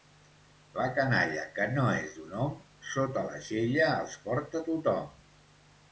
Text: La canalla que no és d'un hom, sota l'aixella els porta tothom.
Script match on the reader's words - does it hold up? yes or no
yes